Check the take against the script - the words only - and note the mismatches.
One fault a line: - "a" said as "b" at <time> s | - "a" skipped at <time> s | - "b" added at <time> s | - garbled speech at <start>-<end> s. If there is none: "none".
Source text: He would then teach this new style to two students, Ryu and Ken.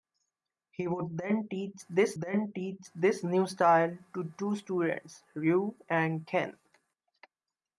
- "then teach this" added at 2.2 s